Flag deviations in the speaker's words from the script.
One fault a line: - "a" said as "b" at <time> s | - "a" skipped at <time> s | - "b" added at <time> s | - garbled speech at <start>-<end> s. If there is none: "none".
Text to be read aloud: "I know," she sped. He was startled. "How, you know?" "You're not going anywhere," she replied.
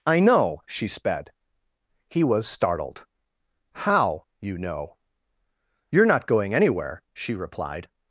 none